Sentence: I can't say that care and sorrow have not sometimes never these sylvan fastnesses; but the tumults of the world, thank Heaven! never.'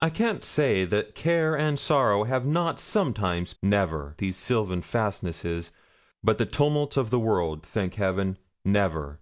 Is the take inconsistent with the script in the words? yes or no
no